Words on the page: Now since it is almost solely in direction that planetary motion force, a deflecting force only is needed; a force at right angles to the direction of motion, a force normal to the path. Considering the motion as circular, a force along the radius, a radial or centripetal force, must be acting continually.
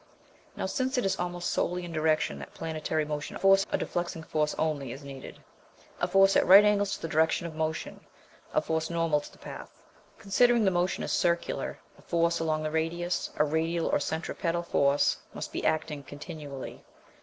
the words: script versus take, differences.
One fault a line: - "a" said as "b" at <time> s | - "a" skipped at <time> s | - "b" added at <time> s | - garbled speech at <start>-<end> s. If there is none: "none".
none